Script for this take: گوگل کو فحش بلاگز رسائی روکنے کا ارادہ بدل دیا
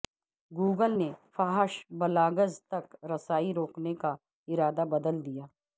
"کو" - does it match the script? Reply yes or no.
no